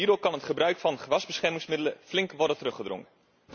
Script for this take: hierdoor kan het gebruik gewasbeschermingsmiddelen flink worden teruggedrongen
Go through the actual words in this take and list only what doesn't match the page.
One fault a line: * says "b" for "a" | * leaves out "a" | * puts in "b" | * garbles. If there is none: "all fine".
* puts in "van"